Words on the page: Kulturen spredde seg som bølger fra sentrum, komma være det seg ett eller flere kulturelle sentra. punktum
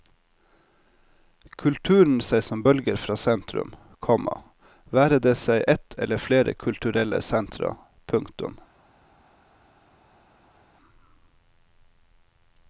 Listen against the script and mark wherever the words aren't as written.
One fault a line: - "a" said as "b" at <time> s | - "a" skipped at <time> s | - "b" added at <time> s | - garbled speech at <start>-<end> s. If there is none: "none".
- "spredde" skipped at 2.2 s